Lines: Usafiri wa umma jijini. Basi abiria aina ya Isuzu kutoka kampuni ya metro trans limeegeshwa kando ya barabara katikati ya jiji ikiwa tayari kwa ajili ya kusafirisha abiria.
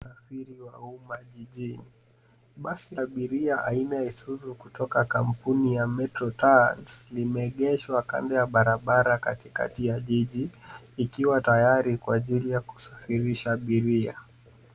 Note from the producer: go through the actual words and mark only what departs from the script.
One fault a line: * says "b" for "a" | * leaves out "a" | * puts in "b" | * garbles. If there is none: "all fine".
all fine